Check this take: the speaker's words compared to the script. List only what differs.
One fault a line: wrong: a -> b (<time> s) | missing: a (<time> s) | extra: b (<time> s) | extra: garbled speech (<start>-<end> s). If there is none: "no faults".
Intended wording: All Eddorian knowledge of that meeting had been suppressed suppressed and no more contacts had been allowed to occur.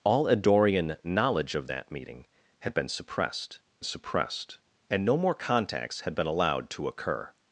no faults